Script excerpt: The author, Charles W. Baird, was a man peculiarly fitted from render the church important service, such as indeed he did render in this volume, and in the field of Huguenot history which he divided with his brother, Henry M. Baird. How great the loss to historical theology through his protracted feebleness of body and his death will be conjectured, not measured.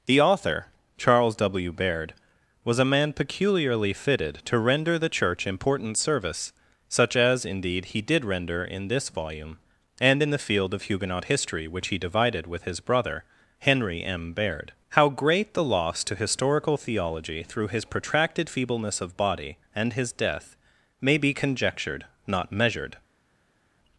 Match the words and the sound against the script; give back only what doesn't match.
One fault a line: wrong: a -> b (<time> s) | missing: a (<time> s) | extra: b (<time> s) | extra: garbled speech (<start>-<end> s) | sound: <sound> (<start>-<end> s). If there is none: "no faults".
wrong: from -> to (4.5 s)
wrong: will -> may (21.0 s)